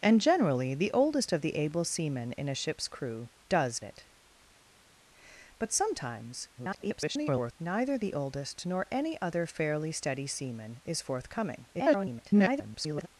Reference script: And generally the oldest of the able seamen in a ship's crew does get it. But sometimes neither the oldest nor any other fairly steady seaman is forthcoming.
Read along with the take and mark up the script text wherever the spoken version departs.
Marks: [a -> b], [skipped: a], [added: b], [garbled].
And generally the oldest of the able seamen in a ship's crew does [skipped: get] it. But sometimes [garbled] neither the oldest nor any other fairly steady seaman is forthcoming. [garbled]